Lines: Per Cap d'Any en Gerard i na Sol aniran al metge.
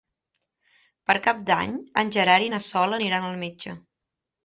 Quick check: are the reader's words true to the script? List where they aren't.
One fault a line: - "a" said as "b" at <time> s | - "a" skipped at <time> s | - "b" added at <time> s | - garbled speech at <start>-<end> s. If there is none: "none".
none